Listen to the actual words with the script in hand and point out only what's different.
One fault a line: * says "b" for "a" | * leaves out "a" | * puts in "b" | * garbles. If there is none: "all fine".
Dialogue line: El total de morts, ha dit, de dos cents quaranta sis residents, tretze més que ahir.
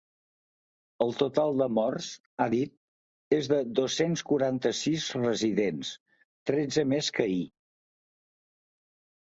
* puts in "és"